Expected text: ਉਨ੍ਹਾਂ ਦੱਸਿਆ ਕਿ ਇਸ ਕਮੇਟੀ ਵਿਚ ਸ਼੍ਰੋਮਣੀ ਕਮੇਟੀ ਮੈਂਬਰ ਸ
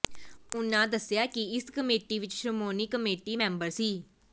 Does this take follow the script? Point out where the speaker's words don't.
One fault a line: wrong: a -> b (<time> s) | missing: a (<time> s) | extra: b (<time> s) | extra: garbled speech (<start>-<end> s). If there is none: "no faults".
no faults